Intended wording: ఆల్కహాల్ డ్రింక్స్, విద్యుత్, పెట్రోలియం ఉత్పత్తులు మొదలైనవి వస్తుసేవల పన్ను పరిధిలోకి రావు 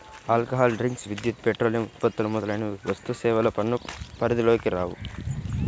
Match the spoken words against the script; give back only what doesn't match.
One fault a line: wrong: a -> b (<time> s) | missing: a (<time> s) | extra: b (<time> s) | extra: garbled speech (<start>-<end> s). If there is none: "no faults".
no faults